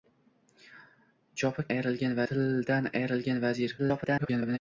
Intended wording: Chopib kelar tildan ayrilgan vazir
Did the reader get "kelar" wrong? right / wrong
wrong